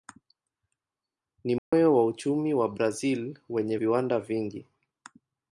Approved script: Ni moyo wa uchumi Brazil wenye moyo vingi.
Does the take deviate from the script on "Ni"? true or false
false